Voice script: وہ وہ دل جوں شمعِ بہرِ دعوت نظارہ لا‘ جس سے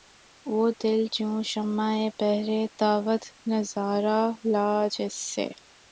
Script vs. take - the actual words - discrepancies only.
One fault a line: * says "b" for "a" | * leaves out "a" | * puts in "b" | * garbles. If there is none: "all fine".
* leaves out "وہ"